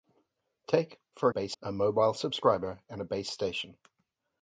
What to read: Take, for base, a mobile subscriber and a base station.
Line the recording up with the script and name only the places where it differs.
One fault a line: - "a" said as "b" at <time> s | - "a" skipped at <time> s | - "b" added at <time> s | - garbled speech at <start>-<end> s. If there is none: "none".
none